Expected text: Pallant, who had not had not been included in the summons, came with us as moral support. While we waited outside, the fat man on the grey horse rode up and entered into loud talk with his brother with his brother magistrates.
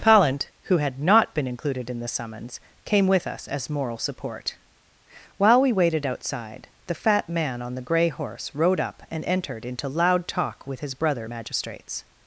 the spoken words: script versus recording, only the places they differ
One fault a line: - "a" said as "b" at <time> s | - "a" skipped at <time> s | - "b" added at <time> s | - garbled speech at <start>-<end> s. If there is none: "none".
- "had not" skipped at 1.4 s
- "with his brother" skipped at 11.3 s